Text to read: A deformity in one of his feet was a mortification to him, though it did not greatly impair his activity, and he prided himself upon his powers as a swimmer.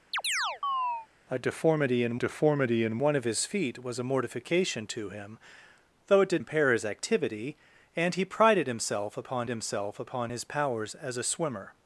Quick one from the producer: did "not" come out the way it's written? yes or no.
no